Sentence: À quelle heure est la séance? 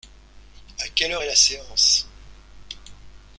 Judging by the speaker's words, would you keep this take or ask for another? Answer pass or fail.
pass